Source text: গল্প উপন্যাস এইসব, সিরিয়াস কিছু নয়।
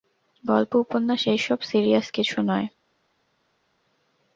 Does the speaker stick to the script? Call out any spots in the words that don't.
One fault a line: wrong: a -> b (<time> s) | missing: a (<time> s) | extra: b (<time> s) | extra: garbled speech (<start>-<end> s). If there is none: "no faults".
no faults